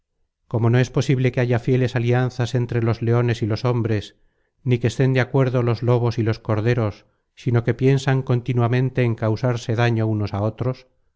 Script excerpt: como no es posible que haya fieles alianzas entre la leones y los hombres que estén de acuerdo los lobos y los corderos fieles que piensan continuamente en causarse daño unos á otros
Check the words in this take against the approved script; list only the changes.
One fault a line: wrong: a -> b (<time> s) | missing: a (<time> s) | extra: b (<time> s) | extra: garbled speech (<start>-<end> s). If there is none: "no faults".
wrong: la -> los (2.8 s)
extra: ni (4.6 s)
wrong: fieles -> sino (7.3 s)